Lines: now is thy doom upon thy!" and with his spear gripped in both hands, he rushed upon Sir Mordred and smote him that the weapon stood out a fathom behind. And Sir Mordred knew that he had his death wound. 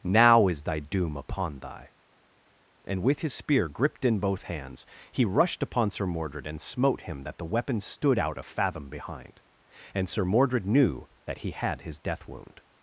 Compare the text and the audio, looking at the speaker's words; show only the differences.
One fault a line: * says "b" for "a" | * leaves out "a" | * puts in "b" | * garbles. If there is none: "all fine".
all fine